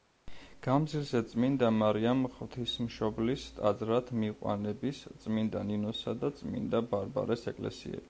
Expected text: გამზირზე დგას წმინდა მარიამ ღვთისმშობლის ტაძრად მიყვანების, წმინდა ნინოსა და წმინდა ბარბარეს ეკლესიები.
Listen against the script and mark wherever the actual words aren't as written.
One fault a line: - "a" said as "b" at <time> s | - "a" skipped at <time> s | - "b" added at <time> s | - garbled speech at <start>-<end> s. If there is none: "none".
- "დგას" skipped at 1.2 s